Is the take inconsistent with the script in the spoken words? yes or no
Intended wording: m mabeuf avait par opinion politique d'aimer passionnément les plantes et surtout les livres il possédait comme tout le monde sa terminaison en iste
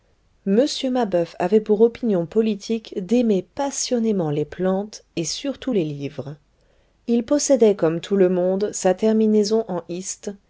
yes